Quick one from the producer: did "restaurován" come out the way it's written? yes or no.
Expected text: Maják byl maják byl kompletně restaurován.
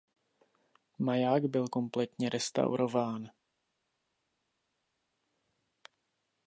yes